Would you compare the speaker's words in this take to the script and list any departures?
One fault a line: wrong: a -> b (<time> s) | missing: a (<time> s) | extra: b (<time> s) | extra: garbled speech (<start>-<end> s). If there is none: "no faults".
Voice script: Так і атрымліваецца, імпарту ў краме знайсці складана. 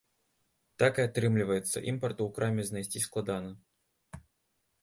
no faults